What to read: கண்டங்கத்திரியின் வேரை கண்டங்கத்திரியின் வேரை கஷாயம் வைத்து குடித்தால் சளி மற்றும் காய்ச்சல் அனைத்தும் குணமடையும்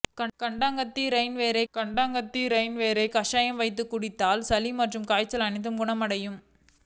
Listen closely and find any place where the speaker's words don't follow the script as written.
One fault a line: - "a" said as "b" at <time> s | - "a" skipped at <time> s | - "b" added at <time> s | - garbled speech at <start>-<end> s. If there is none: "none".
none